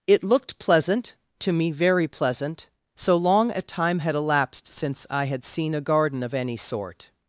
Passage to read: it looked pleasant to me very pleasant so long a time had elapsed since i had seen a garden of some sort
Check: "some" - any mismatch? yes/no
yes